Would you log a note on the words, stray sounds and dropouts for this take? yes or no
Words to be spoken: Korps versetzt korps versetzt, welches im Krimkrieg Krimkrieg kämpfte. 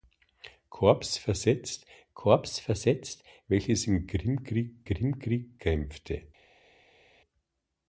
no